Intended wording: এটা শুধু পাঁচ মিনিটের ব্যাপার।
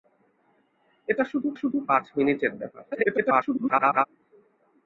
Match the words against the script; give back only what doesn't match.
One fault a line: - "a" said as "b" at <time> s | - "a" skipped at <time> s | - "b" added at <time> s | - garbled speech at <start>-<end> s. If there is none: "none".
- "শুধু" added at 1.5 s
- garbled speech at 2.9-4.1 s